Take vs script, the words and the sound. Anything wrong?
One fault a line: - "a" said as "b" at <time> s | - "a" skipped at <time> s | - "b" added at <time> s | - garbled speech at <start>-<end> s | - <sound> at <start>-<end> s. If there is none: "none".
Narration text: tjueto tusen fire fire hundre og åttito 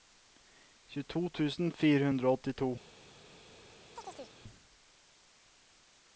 - "fire" skipped at 2.1 s
- chirp at 4.0-4.4 s